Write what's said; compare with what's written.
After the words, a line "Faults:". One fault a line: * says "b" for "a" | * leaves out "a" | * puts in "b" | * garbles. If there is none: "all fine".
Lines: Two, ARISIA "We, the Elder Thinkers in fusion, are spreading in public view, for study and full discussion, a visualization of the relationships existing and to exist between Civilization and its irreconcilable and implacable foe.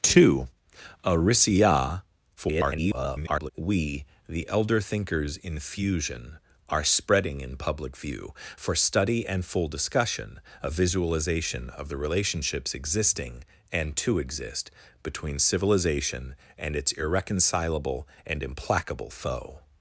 Two, ARISIA [garbled] "We, the Elder Thinkers in fusion, are spreading in public view, for study and full discussion, a visualization of the relationships existing and to exist between Civilization and its irreconcilable and implacable foe.
Faults:
* garbles